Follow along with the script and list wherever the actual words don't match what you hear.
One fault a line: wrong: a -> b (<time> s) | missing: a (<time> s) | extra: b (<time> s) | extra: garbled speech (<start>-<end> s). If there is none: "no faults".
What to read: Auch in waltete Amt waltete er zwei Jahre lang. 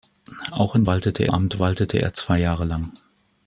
no faults